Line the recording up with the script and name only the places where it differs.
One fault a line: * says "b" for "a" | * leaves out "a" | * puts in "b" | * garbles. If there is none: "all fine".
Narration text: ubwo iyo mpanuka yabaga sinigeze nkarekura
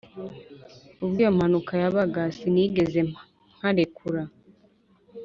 all fine